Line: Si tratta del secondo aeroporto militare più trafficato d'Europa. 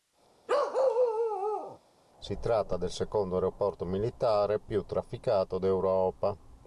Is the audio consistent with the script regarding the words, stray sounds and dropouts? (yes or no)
no